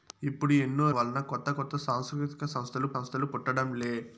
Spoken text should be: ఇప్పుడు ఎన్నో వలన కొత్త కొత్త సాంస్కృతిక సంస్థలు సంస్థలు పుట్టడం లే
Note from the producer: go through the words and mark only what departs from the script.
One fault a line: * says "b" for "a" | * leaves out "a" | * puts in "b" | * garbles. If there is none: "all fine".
all fine